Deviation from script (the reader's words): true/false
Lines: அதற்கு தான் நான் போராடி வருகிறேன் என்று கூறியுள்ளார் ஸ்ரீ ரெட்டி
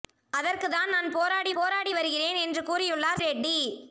true